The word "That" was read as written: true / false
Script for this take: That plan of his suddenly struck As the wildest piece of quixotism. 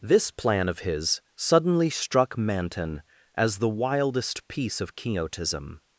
false